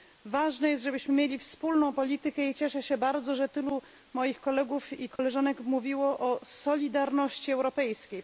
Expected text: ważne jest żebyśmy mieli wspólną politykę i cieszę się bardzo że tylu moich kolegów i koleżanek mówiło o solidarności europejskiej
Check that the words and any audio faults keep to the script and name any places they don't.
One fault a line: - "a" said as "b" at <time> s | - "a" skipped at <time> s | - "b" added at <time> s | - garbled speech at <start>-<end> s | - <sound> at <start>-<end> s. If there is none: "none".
- dropout at 5.2-5.2 s